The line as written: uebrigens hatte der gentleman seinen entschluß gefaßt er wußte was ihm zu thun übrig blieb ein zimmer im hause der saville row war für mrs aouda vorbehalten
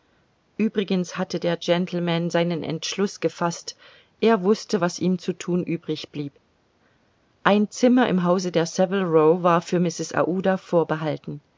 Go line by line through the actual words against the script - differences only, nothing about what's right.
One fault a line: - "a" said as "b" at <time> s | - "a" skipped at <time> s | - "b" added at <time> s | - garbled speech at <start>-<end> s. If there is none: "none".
none